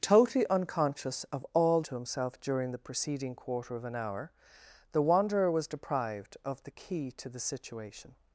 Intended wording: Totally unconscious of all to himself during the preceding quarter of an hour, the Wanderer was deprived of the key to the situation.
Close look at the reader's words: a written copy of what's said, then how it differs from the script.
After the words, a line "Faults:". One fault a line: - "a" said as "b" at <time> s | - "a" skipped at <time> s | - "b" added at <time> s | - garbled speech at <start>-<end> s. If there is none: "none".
Totally unconscious of all to himself during the preceding quarter of an hour, the Wanderer was deprived of the key to the situation.
Faults:
none